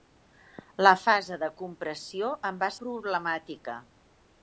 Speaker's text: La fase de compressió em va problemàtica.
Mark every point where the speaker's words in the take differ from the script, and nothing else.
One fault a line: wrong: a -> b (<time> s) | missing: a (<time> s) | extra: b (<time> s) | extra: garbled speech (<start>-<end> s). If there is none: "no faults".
no faults